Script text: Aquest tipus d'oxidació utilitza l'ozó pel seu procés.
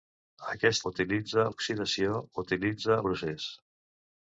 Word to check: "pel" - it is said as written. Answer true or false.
false